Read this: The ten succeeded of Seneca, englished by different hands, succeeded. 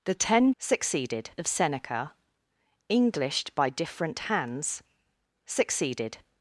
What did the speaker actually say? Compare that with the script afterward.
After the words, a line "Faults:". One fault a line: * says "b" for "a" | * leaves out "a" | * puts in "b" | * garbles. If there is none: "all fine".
The ten succeeded of Seneca, englished by different hands, succeeded.
Faults:
all fine